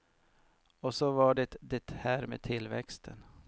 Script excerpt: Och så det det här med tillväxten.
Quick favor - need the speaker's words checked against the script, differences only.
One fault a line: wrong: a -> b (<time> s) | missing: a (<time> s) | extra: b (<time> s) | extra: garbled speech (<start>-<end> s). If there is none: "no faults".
extra: var (1.1 s)